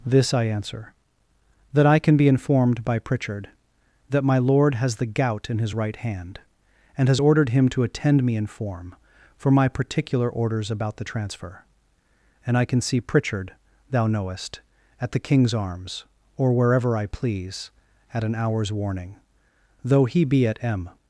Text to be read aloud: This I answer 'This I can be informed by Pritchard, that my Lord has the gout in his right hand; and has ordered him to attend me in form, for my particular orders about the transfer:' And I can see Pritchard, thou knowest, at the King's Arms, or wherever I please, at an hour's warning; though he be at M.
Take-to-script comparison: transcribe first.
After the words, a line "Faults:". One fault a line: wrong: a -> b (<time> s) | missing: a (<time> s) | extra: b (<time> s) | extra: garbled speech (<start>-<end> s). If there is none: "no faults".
This I answer 'That I can be informed by Pritchard, that my Lord has the gout in his right hand; and has ordered him to attend me in form, for my particular orders about the transfer:' And I can see Pritchard, thou knowest, at the King's Arms, or wherever I please, at an hour's warning; though he be at M.
Faults:
wrong: This -> That (1.7 s)